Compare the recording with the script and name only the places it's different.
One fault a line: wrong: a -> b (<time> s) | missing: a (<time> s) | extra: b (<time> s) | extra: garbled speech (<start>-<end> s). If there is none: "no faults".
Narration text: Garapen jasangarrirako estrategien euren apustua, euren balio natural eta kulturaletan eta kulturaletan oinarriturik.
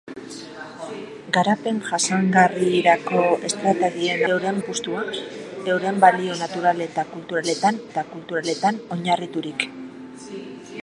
no faults